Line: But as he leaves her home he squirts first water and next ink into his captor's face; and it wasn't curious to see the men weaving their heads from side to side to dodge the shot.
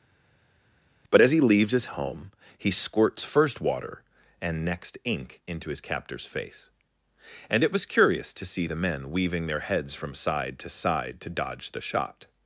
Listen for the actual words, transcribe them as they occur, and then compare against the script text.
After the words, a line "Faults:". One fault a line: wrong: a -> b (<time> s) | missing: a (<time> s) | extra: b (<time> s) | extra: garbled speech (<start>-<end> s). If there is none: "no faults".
But as he leaves his home he squirts first water and next ink into his captor's face; and it was curious to see the men weaving their heads from side to side to dodge the shot.
Faults:
wrong: her -> his (1.7 s)
wrong: wasn't -> was (7.7 s)